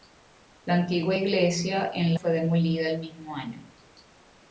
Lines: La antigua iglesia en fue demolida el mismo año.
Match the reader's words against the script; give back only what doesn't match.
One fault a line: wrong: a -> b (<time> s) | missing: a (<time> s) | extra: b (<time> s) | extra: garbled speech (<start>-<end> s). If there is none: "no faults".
no faults